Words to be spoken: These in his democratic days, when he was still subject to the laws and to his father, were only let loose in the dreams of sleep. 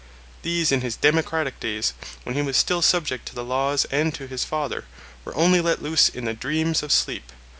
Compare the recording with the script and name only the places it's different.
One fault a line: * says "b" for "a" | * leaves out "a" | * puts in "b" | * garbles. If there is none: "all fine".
all fine